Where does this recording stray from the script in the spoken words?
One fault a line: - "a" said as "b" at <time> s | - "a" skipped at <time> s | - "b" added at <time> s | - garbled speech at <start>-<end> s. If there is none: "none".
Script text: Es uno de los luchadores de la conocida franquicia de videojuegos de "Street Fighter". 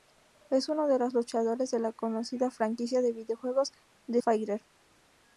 - "Street" skipped at 4.2 s